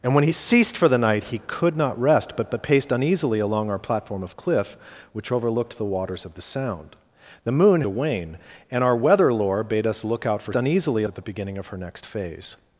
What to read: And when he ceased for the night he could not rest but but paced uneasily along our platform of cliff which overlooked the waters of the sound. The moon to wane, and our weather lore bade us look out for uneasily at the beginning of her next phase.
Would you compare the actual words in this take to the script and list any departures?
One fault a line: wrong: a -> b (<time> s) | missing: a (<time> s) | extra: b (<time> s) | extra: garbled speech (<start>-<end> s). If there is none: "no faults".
no faults